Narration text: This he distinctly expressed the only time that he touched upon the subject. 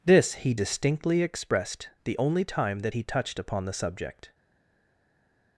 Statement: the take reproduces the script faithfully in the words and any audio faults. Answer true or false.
true